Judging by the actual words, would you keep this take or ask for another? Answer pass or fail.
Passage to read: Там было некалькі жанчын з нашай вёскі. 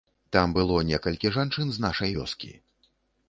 pass